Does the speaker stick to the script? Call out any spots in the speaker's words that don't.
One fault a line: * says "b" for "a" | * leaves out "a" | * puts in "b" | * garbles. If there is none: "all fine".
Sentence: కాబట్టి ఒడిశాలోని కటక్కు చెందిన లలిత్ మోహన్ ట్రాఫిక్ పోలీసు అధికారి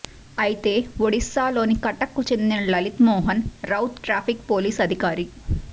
* says "అయితే" for "కాబట్టి"
* puts in "రౌత్"